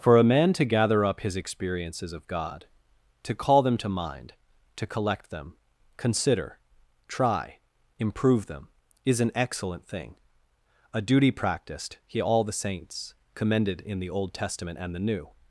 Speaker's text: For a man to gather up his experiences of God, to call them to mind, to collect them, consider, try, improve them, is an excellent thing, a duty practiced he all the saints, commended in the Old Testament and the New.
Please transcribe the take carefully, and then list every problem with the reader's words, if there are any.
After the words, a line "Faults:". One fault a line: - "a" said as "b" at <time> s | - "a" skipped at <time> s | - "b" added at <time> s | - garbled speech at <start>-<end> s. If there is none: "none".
For a man to gather up his experiences of God, to call them to mind, to collect them, consider, try, improve them, is an excellent thing, a duty practiced he all the saints, commended in the Old Testament and the New.
Faults:
none